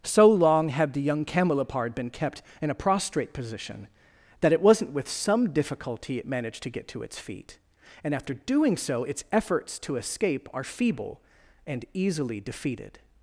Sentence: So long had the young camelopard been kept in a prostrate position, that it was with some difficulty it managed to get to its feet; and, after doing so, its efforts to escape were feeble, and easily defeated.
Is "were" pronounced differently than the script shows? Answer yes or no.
yes